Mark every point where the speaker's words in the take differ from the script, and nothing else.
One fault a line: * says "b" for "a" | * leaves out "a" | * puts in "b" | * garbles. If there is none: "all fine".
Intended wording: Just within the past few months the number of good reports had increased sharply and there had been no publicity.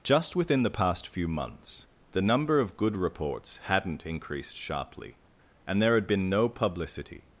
* says "hadn't" for "had"